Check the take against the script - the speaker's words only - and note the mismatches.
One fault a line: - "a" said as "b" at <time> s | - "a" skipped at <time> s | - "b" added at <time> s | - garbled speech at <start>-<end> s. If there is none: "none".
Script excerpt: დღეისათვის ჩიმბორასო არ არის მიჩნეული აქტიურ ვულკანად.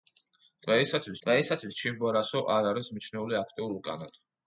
- "დღეისათვის" added at 1.3 s